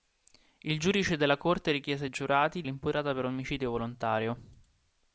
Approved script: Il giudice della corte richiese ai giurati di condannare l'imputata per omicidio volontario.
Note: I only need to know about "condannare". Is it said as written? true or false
false